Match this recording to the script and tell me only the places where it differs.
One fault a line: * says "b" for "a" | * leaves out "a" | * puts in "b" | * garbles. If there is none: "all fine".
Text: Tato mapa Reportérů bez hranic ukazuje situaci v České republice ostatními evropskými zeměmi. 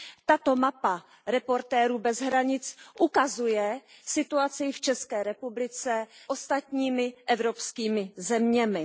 all fine